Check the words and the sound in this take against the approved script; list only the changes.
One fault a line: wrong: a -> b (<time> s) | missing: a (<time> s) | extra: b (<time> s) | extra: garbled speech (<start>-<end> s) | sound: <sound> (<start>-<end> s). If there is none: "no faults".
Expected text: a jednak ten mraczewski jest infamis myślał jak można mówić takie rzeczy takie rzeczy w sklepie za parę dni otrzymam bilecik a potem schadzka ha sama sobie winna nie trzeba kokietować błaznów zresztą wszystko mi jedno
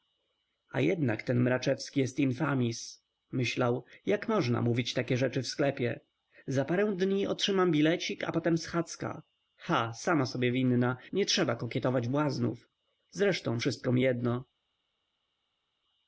missing: takie rzeczy (5.4 s)